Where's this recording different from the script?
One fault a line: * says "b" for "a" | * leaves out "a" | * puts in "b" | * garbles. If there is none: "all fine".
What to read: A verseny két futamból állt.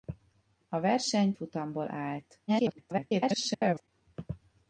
* leaves out "két"
* garbles